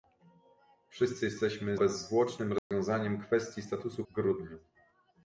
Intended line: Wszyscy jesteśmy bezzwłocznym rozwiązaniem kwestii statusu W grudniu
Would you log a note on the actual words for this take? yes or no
no